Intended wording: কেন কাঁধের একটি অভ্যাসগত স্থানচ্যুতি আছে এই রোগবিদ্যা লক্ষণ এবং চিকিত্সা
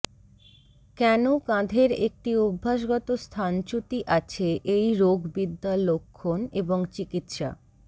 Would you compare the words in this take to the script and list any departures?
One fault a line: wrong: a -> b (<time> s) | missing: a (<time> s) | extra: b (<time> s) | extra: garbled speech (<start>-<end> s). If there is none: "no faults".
no faults